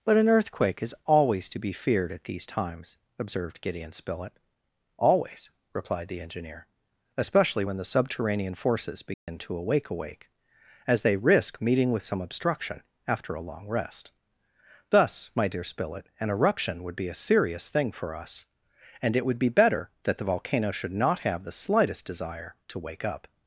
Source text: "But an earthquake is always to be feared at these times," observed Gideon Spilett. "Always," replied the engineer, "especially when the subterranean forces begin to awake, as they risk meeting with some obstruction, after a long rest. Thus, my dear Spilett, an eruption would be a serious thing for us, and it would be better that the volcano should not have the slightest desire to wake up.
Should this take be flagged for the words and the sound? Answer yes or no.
yes